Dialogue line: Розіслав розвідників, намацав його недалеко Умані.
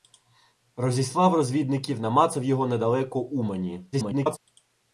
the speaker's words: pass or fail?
fail